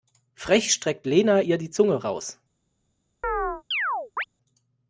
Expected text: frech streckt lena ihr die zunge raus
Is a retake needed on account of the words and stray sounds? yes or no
yes